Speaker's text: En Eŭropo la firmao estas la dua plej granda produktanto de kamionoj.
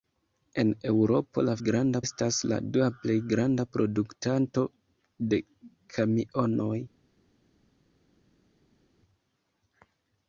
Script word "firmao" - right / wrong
wrong